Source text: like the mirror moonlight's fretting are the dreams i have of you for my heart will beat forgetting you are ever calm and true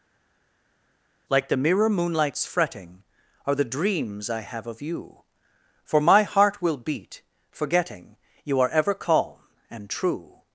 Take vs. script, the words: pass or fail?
pass